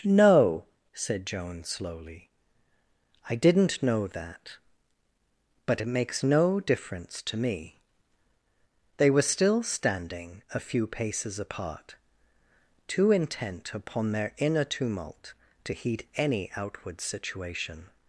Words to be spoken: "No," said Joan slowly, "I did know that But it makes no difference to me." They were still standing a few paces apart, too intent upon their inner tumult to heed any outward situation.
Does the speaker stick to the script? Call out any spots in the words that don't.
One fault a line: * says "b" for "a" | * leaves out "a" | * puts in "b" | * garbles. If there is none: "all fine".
* says "didn't" for "did"